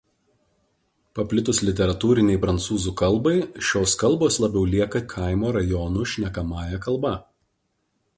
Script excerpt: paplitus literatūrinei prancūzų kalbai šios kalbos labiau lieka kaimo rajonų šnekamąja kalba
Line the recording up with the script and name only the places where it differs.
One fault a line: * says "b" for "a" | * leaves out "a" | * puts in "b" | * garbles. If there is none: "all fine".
all fine